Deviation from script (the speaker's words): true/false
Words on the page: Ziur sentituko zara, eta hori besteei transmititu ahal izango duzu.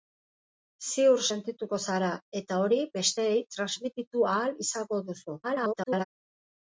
true